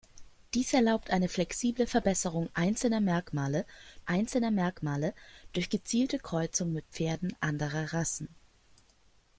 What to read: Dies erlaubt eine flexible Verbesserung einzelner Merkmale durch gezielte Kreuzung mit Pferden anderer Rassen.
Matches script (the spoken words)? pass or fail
fail